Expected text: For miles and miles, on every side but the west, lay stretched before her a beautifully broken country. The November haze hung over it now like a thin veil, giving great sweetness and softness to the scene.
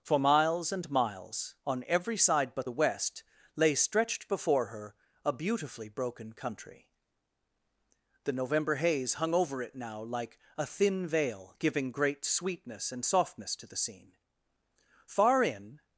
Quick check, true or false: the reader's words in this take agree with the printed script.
false